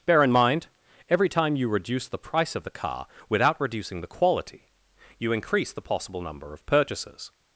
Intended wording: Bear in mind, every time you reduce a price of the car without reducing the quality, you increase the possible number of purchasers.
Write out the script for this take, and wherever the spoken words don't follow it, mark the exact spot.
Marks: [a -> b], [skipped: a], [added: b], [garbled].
Bear in mind, every time you reduce [a -> the] price of the car without reducing the quality, you increase the possible number of purchasers.